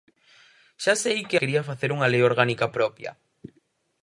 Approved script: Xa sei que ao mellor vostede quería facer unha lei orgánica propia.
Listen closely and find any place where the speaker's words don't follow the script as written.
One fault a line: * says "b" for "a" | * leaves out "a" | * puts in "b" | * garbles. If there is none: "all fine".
* leaves out "ao mellor vostede"